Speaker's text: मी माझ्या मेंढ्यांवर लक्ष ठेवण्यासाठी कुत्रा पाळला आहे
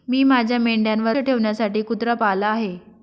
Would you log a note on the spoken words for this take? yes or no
yes